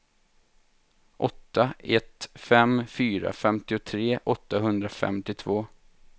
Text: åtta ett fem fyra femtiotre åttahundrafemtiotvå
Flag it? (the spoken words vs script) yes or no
no